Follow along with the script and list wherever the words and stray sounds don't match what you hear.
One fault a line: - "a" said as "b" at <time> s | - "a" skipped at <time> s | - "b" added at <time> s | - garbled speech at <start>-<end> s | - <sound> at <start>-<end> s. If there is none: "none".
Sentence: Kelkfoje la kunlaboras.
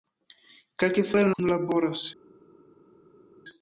none